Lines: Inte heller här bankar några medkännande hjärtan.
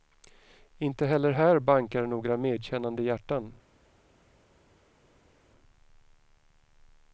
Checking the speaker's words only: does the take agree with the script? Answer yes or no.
yes